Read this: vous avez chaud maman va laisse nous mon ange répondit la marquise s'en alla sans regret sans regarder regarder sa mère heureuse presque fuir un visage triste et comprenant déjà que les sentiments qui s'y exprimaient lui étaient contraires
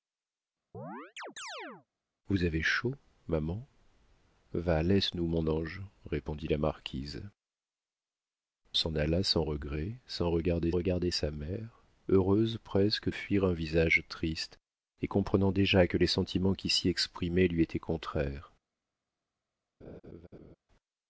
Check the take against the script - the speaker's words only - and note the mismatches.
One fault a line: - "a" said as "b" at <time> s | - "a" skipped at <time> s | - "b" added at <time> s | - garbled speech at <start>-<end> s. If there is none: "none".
none